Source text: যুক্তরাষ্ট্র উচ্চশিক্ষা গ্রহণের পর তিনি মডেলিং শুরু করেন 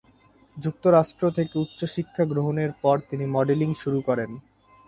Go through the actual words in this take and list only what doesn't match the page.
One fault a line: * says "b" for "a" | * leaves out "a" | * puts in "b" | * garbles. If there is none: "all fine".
* puts in "থেকে"